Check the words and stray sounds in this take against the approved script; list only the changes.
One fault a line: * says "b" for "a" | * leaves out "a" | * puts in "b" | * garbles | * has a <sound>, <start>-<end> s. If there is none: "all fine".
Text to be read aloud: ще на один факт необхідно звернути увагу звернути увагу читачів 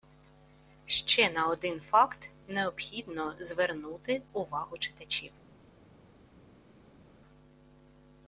* leaves out "звернути увагу"